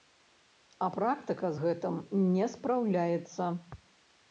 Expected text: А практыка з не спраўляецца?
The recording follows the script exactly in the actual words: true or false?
false